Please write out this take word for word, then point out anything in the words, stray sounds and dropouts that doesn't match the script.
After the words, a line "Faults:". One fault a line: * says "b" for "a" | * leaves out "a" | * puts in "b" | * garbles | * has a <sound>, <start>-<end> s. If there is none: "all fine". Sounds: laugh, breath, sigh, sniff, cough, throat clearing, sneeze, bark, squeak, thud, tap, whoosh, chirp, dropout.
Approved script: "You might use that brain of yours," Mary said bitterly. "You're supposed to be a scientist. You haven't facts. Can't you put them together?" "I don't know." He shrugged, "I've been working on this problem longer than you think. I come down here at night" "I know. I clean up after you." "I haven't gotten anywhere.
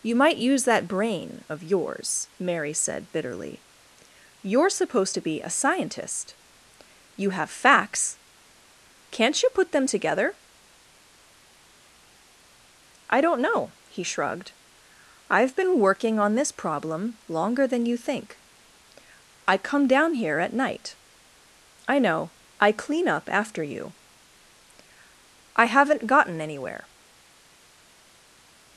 "You might use that brain of yours," Mary said bitterly. "You're supposed to be a scientist. You have facts. Can't you put them together?" "I don't know." He shrugged, "I've been working on this problem longer than you think. I come down here at night" "I know. I clean up after you." "I haven't gotten anywhere.
Faults:
* says "have" for "haven't"